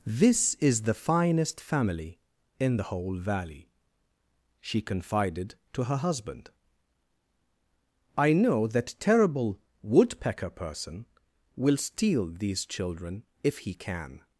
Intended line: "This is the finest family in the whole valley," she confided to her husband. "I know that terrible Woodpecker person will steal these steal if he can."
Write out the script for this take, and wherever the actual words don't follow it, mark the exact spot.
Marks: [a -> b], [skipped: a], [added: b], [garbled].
"This is the finest family in the whole valley," she confided to her husband. "I know that terrible Woodpecker person will steal these [steal -> children] if he can."